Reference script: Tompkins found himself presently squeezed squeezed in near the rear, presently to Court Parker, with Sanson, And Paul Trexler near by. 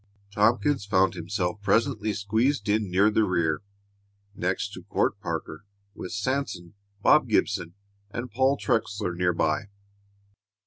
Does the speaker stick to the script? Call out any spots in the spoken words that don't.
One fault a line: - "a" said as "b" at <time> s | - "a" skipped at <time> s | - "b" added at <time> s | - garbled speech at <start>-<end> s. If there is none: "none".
- "squeezed" skipped at 2.7 s
- "presently" said as "next" at 4.3 s
- "Bob Gibson" added at 7.0 s